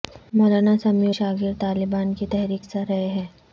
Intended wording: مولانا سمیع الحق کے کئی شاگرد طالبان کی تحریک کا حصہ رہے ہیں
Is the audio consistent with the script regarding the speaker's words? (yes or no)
no